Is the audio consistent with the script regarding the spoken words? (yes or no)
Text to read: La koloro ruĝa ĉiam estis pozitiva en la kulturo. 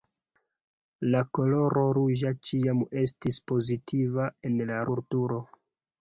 yes